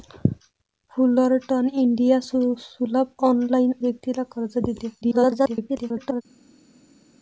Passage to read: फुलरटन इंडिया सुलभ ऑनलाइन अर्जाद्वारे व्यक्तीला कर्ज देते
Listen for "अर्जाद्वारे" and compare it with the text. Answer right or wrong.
wrong